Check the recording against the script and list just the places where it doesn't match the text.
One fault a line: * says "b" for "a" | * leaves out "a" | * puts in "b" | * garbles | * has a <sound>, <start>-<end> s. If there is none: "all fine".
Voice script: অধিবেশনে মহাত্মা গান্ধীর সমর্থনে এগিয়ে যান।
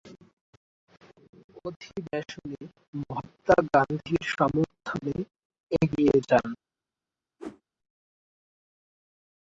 * has a whoosh, 7.4-7.6 s